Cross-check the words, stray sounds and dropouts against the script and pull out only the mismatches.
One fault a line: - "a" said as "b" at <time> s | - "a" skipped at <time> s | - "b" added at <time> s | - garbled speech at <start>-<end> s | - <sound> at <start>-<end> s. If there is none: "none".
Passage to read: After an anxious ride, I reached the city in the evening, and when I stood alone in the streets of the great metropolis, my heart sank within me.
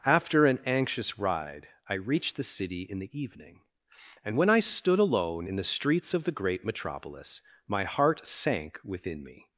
none